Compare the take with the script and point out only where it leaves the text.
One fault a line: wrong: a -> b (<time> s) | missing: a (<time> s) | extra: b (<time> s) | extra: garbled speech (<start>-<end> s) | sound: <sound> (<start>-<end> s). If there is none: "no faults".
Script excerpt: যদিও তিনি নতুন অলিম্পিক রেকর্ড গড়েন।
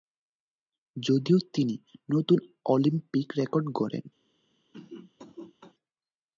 sound: cough (4.7-5.7 s)